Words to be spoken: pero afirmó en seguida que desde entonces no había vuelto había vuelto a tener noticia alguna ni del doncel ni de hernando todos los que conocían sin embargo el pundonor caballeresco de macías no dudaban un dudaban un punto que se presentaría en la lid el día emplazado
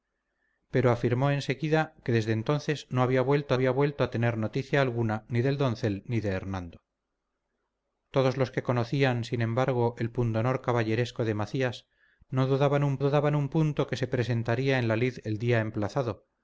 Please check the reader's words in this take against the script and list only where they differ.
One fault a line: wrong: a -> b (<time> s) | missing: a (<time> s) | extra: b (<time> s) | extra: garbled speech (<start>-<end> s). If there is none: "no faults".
no faults